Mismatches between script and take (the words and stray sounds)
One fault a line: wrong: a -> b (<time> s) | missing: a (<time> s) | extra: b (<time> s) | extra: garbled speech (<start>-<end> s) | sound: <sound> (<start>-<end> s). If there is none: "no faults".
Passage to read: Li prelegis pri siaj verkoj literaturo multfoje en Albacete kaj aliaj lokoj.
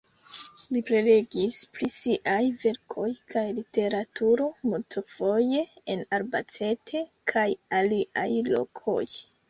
extra: kaj (3.3 s)